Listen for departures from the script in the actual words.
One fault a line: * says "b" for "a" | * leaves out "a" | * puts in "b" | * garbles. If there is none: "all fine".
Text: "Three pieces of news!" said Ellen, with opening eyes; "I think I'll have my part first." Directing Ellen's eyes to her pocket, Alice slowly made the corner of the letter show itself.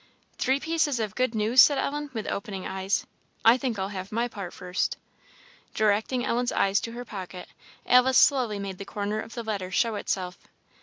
* puts in "good"